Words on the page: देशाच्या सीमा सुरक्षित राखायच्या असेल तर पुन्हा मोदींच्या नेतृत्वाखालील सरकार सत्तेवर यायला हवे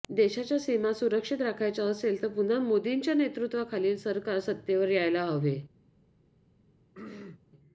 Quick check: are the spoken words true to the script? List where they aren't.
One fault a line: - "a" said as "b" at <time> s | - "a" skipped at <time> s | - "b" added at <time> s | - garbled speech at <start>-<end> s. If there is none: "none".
none